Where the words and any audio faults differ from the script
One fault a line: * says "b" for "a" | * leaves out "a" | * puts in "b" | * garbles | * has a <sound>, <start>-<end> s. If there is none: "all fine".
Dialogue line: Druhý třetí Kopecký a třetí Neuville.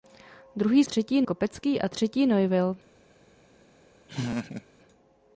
* has a laugh, 4.1-4.7 s